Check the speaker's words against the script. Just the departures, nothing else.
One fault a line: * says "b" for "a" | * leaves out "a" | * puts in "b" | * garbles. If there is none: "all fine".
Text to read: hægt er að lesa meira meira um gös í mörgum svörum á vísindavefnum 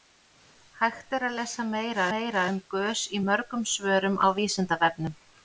all fine